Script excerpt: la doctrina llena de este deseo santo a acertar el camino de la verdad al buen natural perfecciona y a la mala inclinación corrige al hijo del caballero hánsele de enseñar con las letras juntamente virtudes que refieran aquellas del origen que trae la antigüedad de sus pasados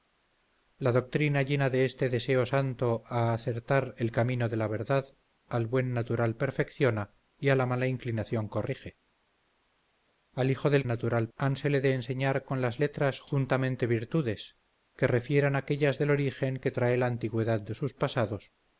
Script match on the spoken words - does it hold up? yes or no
no